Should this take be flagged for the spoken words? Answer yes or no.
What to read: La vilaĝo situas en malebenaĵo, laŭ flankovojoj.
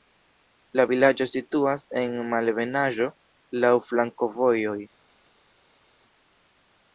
no